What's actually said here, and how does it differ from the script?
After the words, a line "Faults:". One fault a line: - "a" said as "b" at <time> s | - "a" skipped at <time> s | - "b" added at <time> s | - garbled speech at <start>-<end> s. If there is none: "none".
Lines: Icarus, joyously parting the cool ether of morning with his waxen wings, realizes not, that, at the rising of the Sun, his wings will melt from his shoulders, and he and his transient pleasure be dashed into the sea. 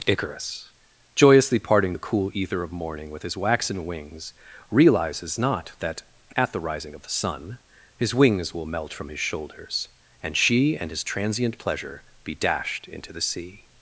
Icarus, joyously parting the cool ether of morning with his waxen wings, realizes not, that, at the rising of the Sun, his wings will melt from his shoulders, and she and his transient pleasure be dashed into the sea.
Faults:
- "he" said as "she" at 10.4 s